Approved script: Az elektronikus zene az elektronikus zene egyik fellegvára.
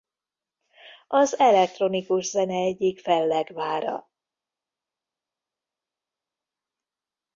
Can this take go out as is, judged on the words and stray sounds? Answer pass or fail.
fail